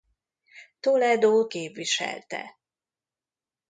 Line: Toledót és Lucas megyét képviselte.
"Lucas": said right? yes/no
no